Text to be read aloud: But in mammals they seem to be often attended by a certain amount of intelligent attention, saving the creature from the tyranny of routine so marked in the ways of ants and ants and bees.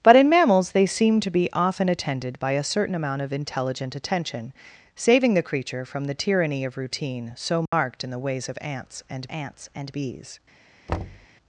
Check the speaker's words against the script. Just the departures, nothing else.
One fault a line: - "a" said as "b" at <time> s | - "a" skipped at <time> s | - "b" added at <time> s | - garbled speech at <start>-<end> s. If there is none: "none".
none